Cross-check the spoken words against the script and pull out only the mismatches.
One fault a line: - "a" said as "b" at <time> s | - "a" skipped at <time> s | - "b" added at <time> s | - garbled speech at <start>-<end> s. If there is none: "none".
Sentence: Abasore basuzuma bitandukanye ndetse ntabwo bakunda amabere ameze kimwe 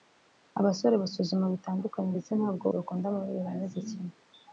none